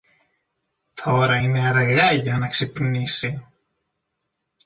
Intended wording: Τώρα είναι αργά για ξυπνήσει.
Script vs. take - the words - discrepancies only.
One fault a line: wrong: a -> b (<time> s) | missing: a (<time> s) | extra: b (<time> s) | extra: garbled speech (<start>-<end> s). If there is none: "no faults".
extra: να (2.3 s)